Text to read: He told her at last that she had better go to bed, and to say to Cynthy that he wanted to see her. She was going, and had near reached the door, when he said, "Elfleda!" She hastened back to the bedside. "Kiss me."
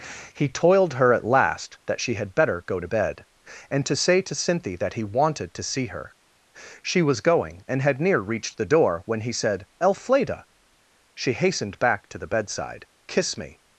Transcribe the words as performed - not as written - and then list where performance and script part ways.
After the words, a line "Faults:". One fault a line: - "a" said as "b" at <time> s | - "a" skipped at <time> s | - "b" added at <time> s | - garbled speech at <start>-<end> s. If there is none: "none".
He toiled her at last that she had better go to bed, and to say to Cynthy that he wanted to see her. She was going, and had near reached the door, when he said, "Elfleda!" She hastened back to the bedside. "Kiss me."
Faults:
- "told" said as "toiled" at 0.5 s